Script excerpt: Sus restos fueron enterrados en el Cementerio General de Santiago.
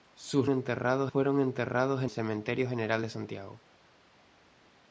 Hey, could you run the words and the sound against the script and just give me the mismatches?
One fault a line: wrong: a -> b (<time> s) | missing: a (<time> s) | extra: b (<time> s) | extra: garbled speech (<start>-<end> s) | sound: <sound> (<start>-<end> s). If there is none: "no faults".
wrong: restos -> enterrados (0.5 s)
missing: el (2.1 s)